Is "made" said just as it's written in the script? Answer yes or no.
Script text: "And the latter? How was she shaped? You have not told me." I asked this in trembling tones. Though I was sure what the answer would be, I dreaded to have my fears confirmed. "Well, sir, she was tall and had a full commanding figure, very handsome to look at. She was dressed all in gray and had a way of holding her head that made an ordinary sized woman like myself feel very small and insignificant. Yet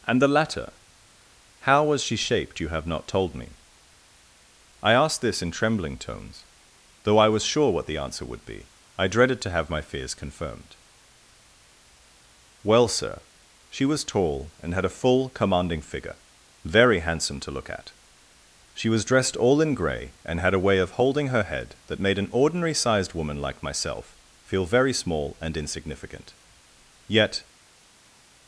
yes